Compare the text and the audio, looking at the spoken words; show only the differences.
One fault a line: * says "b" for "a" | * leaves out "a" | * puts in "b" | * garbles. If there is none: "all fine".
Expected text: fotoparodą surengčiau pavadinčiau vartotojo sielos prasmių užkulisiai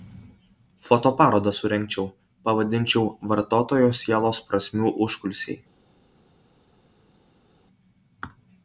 all fine